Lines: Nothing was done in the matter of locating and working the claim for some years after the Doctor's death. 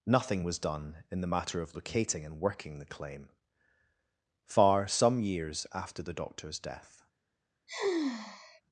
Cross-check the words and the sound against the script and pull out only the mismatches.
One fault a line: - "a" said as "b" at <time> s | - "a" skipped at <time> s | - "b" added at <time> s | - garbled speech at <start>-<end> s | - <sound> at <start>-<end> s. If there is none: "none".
- "for" said as "far" at 4.5 s
- sigh at 7.7-8.6 s